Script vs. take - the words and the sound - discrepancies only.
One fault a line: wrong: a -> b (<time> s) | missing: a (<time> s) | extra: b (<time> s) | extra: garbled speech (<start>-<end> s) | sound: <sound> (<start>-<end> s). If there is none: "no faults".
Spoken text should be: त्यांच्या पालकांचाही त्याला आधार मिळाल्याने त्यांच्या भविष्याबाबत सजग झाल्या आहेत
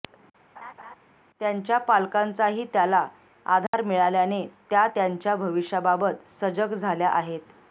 sound: laugh (0.6-1.0 s)
sound: dropout (3.7-3.7 s)
extra: त्या (4.7 s)